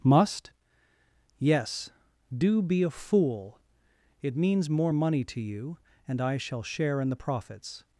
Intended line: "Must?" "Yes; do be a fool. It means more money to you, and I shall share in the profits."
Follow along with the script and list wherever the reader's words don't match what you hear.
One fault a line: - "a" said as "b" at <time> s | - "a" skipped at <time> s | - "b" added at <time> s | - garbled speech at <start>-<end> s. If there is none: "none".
none